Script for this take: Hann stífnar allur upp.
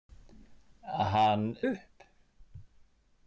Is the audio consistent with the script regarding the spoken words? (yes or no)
no